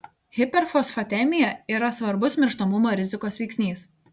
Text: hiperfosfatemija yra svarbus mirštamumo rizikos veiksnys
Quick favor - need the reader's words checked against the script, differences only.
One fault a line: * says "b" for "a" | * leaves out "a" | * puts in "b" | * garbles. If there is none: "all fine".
all fine